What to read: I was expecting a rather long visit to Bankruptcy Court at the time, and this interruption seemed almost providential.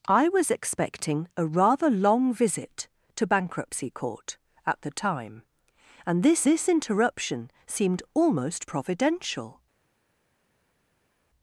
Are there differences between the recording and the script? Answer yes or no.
yes